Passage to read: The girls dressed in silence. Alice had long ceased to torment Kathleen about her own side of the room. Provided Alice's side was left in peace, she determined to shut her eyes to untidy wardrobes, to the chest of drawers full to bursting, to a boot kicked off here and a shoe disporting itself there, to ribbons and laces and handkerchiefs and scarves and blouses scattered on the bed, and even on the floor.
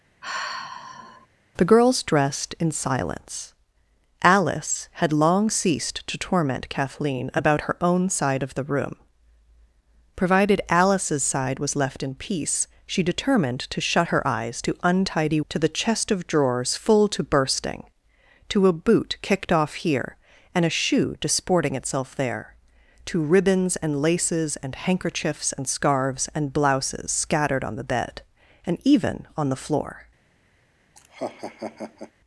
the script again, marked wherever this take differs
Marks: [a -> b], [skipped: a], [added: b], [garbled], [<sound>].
[sigh] The girls dressed in silence. Alice had long ceased to torment Kathleen about her own side of the room. Provided Alice's side was left in peace, she determined to shut her eyes to untidy [skipped: wardrobes,] to the chest of drawers full to bursting, to a boot kicked off here and a shoe disporting itself there, to ribbons and laces and handkerchiefs and scarves and blouses scattered on the bed, and even on the floor. [laugh]